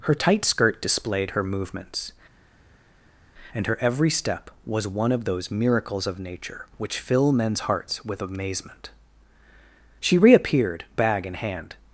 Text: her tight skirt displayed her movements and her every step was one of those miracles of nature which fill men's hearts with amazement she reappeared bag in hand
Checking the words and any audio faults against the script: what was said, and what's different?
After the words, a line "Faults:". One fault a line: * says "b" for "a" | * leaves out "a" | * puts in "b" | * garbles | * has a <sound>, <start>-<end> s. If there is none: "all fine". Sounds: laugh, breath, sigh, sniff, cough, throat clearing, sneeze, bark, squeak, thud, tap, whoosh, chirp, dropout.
her tight skirt displayed her movements and her every step was one of those miracles of nature which fill men's hearts with amazement she reappeared bag in hand
Faults:
all fine